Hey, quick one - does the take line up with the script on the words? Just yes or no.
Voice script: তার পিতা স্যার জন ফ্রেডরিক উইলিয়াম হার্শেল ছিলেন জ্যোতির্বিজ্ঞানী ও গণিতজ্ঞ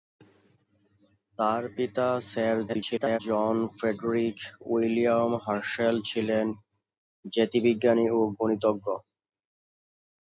no